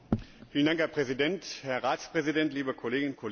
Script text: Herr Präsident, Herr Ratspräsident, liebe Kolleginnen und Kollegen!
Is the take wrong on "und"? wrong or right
right